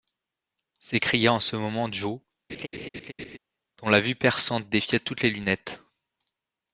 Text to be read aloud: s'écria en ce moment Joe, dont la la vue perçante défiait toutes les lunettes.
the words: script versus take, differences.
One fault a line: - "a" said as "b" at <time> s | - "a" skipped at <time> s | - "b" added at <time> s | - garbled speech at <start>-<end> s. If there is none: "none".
- "la" skipped at 4.0 s